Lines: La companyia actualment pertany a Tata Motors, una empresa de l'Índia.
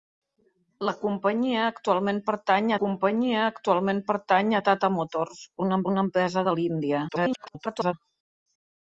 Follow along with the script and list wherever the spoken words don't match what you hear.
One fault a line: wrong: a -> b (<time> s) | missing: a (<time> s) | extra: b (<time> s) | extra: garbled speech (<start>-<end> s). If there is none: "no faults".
extra: companyia actualment pertany (2.8 s)
extra: una (5.9 s)
extra: garbled speech (7.1-7.9 s)